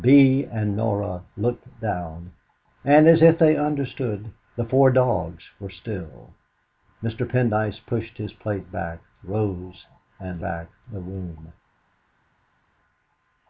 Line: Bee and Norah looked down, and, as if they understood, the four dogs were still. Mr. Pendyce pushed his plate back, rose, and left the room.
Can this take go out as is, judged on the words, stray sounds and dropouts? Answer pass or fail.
fail